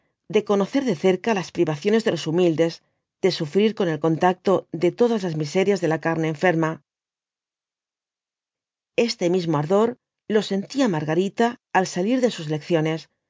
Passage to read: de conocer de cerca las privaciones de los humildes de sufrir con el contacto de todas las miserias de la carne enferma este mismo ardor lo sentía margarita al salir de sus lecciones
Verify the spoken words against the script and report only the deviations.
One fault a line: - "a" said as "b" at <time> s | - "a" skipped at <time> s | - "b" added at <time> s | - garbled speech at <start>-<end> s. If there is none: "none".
none